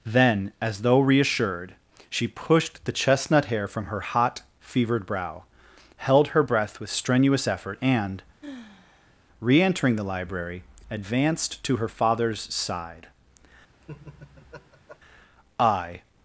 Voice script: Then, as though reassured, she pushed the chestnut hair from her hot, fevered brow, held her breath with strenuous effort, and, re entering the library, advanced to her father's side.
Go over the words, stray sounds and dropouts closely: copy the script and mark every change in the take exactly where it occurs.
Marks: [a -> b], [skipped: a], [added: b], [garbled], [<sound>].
Then, as though reassured, she pushed the chestnut hair from her hot, fevered brow, held her breath with strenuous effort, and, [sigh] re entering the library, advanced to her father's side. [laugh] [added: I]